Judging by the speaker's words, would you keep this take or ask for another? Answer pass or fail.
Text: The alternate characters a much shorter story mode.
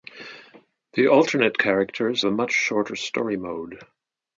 pass